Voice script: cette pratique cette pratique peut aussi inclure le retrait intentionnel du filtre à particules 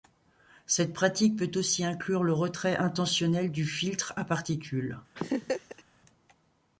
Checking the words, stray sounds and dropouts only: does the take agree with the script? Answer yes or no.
no